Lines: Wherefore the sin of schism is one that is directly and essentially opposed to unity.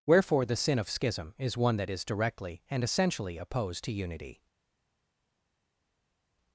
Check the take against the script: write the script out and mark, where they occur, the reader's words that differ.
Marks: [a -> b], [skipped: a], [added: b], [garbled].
Wherefore the sin of schism is one that is directly and essentially opposed to unity.